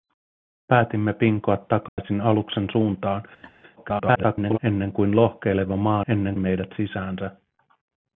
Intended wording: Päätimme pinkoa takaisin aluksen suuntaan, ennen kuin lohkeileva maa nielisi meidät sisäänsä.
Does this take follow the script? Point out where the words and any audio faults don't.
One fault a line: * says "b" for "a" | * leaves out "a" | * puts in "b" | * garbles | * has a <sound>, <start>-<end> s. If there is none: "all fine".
* has a dropout, 1.9-2.0 s
* has a laugh, 3.4-3.5 s
* garbles
* says "ennen" for "nielisi"